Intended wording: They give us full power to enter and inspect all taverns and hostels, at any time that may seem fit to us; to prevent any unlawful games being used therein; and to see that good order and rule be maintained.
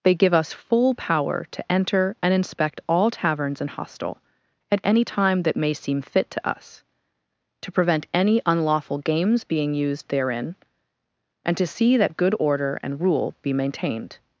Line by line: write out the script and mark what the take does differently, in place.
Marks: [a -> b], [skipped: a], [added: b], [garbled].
They give us full power to enter and inspect all taverns and [hostels, -> hostel] at any time that may seem fit to us; to prevent any unlawful games being used therein; and to see that good order and rule be maintained.